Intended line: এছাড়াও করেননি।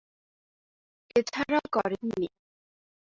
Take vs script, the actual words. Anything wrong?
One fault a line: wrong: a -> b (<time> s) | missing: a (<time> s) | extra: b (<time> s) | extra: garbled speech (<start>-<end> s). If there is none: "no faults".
no faults